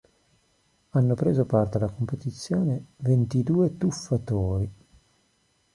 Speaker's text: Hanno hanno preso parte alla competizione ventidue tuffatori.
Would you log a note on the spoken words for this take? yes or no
yes